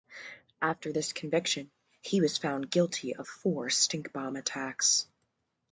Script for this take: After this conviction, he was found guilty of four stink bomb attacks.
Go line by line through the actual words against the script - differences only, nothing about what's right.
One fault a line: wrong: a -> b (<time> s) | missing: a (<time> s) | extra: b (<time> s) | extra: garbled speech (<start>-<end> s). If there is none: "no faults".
no faults